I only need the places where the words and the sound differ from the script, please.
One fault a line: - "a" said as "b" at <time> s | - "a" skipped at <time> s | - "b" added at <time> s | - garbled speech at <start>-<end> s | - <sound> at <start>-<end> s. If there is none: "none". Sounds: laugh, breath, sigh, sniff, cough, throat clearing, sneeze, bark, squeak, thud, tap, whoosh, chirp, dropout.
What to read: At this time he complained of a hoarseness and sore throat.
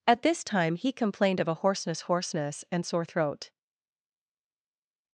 - "hoarseness" added at 2.0 s